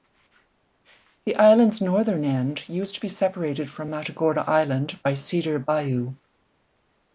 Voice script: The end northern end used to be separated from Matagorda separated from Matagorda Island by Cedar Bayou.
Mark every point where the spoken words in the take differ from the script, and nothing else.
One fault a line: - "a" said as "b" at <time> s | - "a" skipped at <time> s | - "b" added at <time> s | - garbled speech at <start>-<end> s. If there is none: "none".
- "end" said as "island's" at 1.4 s
- "separated from Matagorda" skipped at 4.4 s